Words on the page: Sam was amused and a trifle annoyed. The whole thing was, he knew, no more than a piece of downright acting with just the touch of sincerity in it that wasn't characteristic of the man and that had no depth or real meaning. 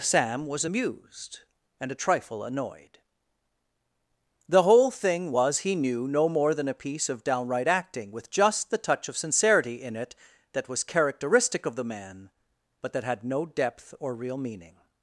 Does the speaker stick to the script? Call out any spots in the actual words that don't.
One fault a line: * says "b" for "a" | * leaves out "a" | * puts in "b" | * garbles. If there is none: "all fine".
* says "was" for "wasn't"
* says "but" for "and"